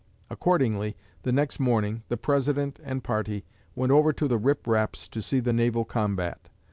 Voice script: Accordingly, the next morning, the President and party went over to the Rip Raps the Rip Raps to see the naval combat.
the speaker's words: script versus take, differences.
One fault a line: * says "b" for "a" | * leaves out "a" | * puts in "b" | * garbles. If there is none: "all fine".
* leaves out "the Rip Raps"